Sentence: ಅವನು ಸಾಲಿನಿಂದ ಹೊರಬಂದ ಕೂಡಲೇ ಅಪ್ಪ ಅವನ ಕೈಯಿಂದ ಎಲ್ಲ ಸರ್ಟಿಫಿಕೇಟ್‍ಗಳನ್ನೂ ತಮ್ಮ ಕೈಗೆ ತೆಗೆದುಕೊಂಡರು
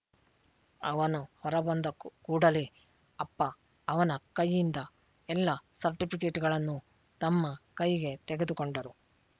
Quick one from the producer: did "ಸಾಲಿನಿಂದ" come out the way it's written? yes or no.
no